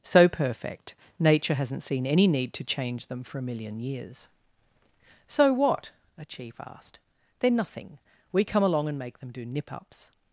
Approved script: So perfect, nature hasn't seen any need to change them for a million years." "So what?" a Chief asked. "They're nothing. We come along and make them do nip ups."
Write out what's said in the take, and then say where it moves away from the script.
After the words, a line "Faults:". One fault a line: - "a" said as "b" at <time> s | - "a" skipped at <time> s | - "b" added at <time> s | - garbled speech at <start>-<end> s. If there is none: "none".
So perfect, nature hasn't seen any need to change them for a million years." "So what?" a Chief asked. "They're nothing. We come along and make them do nip ups."
Faults:
none